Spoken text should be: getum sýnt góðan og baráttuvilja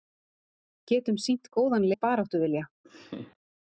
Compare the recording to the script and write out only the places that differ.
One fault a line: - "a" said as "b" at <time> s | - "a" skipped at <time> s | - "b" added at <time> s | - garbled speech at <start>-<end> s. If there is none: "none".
none